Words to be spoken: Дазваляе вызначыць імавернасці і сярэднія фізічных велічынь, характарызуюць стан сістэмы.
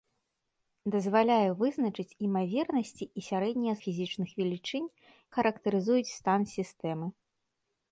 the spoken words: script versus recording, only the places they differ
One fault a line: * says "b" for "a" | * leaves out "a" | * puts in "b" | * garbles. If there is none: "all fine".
all fine